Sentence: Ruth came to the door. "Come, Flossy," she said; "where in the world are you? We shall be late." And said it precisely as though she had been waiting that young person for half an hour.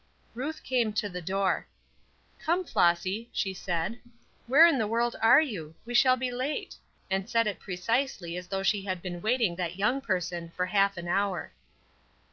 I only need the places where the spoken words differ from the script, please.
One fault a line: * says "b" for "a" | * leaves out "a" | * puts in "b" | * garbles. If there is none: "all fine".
all fine